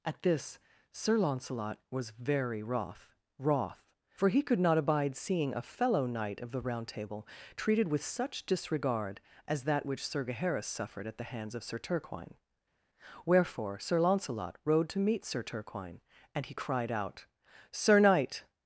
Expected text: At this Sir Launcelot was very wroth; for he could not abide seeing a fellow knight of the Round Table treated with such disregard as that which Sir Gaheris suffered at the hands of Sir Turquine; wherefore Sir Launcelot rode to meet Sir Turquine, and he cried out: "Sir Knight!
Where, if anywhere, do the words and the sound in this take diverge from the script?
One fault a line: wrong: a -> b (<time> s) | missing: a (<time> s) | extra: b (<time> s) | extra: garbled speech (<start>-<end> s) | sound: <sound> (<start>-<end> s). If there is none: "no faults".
extra: wroth (3.4 s)